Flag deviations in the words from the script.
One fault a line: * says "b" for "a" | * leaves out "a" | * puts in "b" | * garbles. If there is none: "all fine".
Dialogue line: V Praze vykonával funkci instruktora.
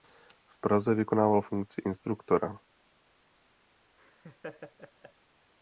all fine